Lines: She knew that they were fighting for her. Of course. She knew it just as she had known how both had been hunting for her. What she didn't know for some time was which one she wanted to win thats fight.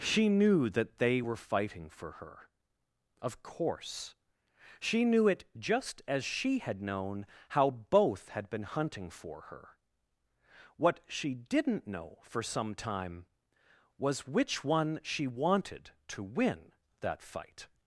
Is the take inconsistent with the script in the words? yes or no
yes